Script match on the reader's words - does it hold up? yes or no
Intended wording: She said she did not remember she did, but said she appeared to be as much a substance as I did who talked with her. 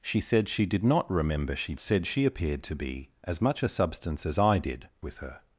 no